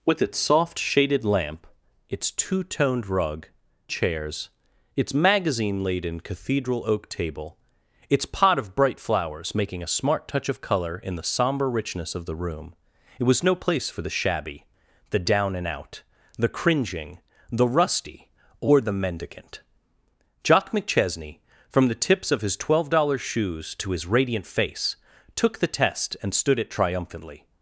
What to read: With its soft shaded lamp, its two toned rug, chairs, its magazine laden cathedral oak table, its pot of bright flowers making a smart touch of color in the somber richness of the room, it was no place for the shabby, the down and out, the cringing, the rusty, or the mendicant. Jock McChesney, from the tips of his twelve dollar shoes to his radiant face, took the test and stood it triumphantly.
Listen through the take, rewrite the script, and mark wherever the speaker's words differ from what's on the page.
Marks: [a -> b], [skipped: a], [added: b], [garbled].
With its soft shaded lamp, its two toned rug, chairs, its magazine laden cathedral oak table, its pot of bright flowers making a smart touch of color in the somber richness of the room, it was no place for the shabby, the down and out, the cringing, the rusty, or the mendicant. Jock McChesney, from the tips of his twelve dollar shoes to his radiant face, took the test and stood it triumphantly.